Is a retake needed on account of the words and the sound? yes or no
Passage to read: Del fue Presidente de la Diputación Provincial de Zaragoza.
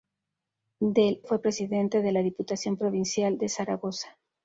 no